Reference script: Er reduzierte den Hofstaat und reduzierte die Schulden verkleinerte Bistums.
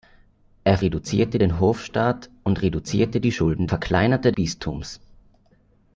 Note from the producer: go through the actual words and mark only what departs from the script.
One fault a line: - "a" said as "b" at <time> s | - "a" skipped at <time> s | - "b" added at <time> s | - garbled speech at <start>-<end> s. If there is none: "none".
none